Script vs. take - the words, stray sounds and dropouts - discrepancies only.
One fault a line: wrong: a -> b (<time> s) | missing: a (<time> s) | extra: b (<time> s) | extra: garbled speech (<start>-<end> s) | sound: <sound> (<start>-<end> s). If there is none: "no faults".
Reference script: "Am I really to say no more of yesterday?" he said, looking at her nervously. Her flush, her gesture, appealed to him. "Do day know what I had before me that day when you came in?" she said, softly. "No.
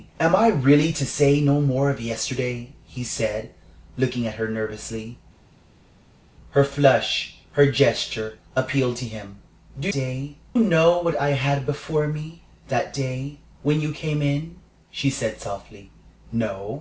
no faults